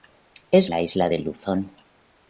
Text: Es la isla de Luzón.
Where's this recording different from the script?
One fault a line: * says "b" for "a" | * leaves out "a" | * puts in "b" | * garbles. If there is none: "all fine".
all fine